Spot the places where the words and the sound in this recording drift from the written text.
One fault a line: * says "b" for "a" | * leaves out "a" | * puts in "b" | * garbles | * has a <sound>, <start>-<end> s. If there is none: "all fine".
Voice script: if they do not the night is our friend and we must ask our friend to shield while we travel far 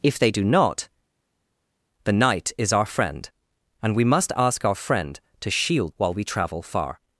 all fine